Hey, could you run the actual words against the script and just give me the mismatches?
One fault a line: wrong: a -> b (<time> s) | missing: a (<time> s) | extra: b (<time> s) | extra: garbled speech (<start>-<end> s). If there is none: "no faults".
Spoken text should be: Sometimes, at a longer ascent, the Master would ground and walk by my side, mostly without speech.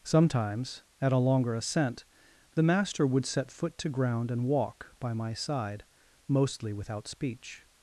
extra: set foot to (3.2 s)